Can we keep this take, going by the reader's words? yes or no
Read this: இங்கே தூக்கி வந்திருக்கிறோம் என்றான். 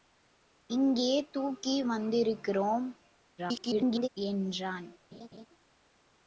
no